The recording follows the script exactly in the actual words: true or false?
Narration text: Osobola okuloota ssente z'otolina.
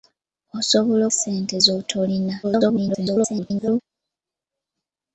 false